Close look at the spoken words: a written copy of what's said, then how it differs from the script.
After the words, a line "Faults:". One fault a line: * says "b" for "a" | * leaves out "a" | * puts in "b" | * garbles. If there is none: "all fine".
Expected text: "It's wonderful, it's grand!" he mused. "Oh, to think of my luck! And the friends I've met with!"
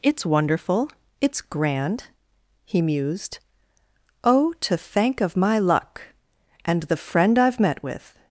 "It's wonderful, it's grand!" he mused. "Oh, to thank of my luck! And the friend I've met with!"
Faults:
* says "thank" for "think"
* says "friend" for "friends"